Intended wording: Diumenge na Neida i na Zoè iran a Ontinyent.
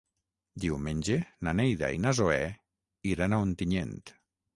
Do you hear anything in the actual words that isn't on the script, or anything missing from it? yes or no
no